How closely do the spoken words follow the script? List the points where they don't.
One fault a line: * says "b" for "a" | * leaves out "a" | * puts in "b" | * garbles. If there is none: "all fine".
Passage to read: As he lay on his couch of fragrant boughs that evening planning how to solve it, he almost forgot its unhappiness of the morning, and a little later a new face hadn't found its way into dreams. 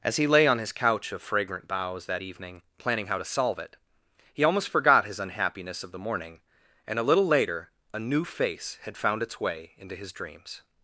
* says "his" for "its"
* says "had" for "hadn't"
* puts in "his"